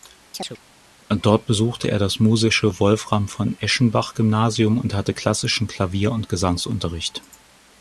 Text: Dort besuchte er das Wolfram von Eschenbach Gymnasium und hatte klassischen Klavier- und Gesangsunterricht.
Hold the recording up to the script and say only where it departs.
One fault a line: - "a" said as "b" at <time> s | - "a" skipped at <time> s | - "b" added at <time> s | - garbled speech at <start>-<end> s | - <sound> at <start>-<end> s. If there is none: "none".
- chirp at 0.3-0.6 s
- "musische" added at 2.2 s